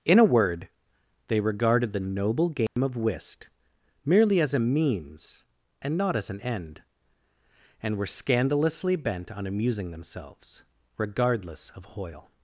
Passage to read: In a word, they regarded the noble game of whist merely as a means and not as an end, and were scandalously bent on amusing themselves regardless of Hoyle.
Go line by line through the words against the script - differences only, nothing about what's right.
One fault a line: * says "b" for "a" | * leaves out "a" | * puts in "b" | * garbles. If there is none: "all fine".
all fine